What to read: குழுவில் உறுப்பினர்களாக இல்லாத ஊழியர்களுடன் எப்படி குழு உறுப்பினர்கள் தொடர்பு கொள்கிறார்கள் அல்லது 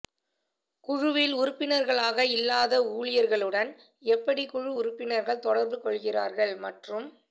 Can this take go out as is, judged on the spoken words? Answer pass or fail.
fail